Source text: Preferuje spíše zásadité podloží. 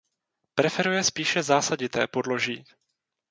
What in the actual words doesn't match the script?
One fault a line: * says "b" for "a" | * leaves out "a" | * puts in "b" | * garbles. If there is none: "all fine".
all fine